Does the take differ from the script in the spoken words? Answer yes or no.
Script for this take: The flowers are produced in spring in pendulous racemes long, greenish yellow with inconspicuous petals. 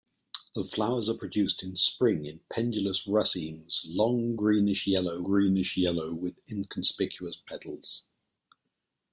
yes